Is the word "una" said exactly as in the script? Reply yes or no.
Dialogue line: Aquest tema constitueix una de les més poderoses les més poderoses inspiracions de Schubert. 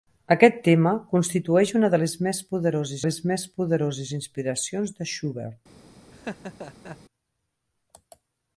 yes